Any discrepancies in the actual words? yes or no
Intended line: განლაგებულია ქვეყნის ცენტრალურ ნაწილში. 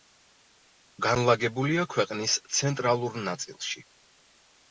no